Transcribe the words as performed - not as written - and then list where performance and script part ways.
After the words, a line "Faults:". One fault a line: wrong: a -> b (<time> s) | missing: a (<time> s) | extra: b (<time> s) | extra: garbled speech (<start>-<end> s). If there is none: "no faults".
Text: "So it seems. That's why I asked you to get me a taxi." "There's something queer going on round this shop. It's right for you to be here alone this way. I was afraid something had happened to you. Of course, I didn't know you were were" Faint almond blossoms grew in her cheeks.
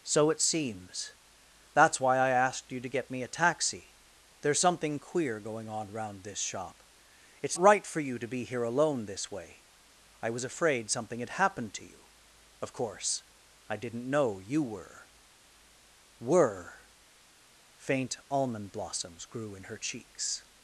"So it seems. That's why I asked you to get me a taxi." "There's something queer going on round this shop. It's right for you to be here alone this way. I was afraid something had happened to you. Of course, I didn't know you were were" Faint almond blossoms grew in her cheeks.
Faults:
no faults